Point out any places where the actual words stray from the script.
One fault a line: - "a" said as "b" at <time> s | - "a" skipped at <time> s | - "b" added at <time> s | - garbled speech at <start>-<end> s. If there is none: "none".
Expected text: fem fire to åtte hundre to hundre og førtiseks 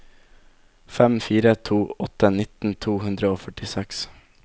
- "hundre" said as "nitten" at 2.4 s